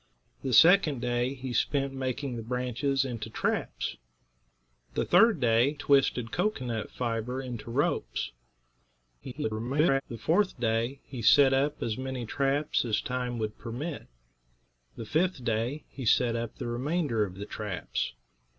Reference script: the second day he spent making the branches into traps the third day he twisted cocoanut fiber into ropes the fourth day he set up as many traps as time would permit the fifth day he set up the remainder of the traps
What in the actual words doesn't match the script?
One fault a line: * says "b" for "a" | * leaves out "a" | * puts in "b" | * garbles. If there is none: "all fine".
* leaves out "he"
* garbles